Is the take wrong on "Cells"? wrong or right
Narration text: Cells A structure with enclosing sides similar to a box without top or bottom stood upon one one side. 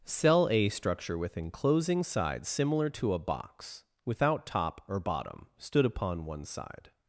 wrong